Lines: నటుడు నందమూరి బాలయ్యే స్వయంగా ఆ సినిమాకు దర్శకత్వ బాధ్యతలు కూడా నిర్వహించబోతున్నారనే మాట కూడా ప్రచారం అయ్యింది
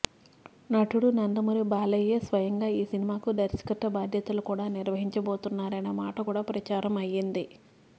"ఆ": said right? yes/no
no